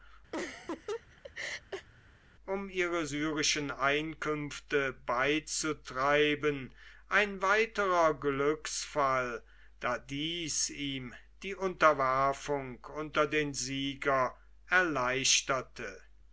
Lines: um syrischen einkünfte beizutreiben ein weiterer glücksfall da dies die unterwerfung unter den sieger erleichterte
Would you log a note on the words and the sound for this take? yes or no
yes